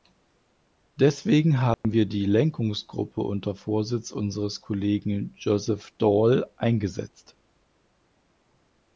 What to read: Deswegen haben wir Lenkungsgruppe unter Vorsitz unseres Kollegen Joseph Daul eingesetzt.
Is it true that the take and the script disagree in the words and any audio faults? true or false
true